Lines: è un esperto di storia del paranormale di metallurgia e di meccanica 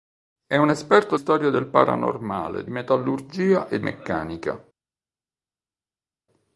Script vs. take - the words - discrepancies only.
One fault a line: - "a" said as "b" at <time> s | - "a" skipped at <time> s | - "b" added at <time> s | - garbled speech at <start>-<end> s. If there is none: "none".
- "di" skipped at 1.1 s
- "di" skipped at 2.7 s
- "di" skipped at 3.8 s